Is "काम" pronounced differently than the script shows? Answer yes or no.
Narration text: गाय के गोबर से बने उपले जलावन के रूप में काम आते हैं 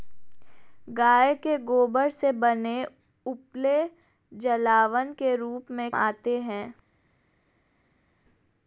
yes